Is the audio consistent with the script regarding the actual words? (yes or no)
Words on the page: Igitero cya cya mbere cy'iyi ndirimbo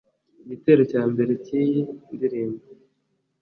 no